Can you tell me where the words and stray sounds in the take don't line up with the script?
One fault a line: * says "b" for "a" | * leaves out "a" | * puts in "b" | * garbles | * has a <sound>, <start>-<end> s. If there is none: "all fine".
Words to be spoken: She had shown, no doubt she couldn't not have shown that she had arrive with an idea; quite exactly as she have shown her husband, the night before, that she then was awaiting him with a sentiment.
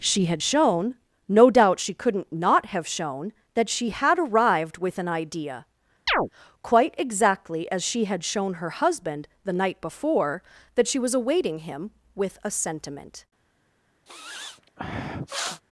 * says "arrived" for "arrive"
* has a chirp, 6.1-6.3 s
* says "had" for "have"
* leaves out "then"
* has a sniff, 14.1-15.6 s